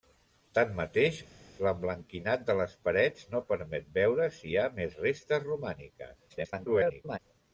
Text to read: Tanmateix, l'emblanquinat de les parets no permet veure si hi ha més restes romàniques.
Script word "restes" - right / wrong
right